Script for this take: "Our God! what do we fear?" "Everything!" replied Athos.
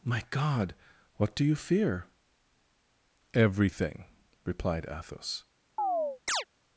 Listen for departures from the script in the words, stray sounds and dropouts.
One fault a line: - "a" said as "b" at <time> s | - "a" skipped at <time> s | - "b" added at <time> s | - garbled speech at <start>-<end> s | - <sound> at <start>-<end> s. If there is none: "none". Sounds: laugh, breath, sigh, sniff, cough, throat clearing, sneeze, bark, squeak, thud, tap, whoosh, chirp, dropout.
- "Our" said as "My" at 0.0 s
- "we" said as "you" at 1.4 s
- chirp at 5.8-6.4 s